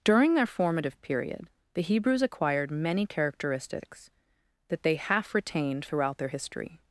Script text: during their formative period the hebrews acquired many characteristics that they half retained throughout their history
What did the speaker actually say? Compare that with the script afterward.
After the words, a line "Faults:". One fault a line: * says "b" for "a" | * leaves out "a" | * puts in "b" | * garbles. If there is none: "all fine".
during their formative period the hebrews acquired many characteristics that they half retained throughout their history
Faults:
all fine